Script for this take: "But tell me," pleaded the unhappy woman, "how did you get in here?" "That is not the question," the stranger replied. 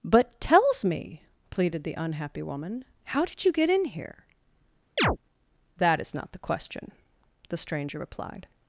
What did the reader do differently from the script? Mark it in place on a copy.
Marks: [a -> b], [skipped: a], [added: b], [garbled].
"But [tell -> tells] me," pleaded the unhappy woman, "how did you get in here?" "That is not the question," the stranger replied.